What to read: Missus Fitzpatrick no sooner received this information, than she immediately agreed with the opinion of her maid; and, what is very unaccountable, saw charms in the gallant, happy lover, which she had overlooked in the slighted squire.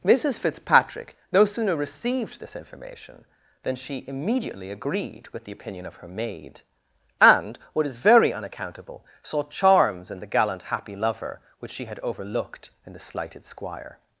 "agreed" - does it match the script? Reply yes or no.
yes